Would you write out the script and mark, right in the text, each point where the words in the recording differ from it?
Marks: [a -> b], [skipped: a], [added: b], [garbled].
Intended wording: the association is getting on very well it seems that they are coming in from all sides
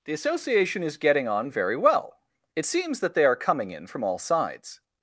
the association is getting on very well it seems that they are coming in from all sides